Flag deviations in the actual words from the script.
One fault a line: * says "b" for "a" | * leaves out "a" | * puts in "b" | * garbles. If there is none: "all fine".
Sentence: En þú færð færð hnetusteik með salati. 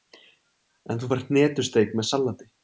* leaves out "færð"